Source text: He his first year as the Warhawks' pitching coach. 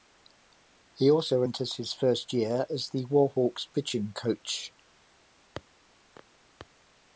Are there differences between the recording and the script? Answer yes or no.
yes